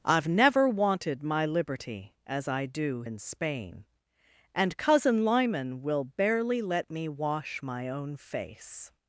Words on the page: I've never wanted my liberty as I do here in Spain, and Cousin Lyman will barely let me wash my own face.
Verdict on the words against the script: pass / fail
fail